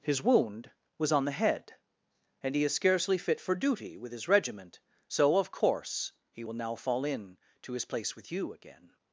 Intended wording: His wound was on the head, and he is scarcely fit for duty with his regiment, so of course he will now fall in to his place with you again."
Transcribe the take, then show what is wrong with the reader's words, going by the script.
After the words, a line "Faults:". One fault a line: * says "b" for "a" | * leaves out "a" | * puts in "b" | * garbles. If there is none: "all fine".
His wound was on the head, and he is scarcely fit for duty with his regiment, so of course he will now fall in to his place with you again."
Faults:
all fine